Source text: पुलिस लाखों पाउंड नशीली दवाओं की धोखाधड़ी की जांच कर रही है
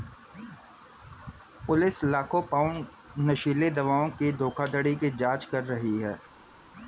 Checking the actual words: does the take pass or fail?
pass